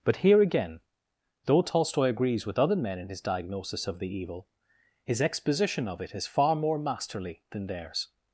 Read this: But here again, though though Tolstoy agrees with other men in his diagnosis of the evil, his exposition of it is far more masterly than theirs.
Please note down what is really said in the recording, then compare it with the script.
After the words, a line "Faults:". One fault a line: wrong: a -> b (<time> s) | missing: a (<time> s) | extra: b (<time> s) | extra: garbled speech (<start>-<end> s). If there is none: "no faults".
But here again, though Tolstoy agrees with other men in his diagnosis of the evil, his exposition of it is far more masterly than theirs.
Faults:
missing: though (1.6 s)